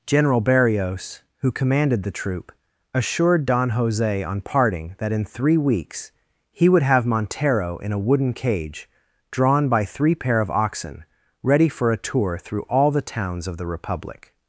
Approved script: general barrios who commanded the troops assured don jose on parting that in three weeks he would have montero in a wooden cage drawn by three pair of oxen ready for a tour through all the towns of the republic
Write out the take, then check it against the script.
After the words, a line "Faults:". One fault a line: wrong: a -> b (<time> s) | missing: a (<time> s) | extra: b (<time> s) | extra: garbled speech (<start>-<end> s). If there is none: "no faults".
general barrios who commanded the troop assured don jose on parting that in three weeks he would have montero in a wooden cage drawn by three pair of oxen ready for a tour through all the towns of the republic
Faults:
wrong: troops -> troop (2.1 s)